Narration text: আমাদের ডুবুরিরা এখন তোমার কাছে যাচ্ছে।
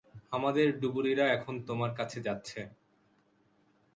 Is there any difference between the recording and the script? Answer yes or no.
no